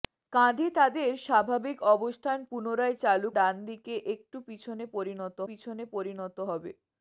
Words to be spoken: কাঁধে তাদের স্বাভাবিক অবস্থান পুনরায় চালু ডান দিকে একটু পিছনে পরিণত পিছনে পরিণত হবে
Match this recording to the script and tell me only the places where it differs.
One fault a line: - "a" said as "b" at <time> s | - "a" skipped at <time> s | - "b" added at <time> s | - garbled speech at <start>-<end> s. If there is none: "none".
none